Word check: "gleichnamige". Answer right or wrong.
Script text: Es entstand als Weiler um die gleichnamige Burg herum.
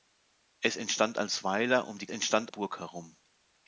wrong